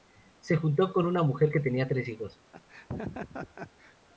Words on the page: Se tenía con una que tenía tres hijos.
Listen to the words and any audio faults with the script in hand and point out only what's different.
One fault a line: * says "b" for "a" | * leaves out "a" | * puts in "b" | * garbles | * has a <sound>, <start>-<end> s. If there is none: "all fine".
* says "juntó" for "tenía"
* puts in "mujer"
* has a laugh, 2.5-4.0 s